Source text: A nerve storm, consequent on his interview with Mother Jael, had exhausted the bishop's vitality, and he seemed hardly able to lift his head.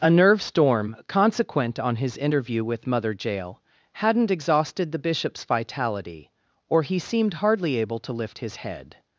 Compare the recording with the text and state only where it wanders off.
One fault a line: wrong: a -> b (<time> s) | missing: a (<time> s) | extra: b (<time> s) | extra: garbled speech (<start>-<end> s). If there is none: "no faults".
wrong: had -> hadn't (3.9 s)
wrong: and -> or (6.7 s)